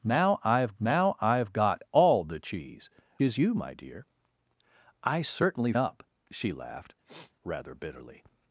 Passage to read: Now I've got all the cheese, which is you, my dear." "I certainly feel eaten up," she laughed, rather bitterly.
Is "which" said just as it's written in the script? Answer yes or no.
no